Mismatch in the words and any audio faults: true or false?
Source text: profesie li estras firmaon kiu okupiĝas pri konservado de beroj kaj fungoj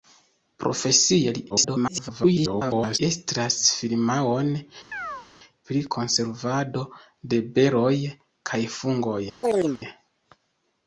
true